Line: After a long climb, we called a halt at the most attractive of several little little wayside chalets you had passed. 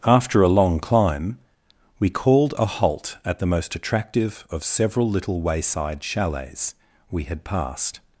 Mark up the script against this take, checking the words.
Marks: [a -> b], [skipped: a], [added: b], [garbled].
After a long climb, we called a halt at the most attractive of several little [skipped: little] wayside chalets [you -> we] had passed.